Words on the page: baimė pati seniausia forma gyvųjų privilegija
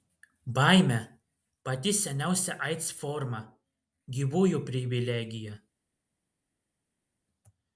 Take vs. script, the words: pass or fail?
fail